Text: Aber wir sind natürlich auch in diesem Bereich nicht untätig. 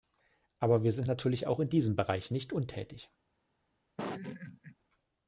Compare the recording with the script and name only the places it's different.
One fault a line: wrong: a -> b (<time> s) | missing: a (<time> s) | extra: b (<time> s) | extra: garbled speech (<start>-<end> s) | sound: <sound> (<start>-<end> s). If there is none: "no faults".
sound: laugh (4.0-4.8 s)